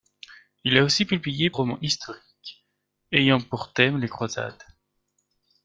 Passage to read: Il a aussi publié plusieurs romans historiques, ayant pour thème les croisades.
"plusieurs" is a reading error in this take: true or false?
true